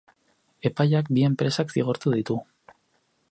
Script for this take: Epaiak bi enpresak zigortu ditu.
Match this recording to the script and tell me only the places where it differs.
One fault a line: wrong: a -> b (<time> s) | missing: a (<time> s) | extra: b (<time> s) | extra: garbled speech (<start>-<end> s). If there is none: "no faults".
no faults